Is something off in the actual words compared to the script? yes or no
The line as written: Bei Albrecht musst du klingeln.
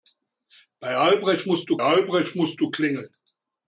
yes